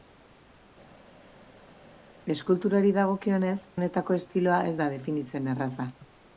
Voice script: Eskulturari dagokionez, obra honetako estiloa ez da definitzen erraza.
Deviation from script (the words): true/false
true